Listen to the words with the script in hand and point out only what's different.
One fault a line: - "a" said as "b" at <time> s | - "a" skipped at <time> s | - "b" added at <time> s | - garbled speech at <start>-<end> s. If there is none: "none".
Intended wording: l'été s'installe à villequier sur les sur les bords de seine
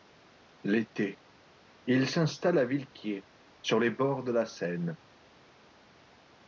- "il" added at 1.9 s
- "sur les" skipped at 3.9 s
- "la" added at 4.3 s